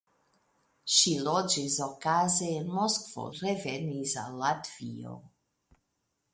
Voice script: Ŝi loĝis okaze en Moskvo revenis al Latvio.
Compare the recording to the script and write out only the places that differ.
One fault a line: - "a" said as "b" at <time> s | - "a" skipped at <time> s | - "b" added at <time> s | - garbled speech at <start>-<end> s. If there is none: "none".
none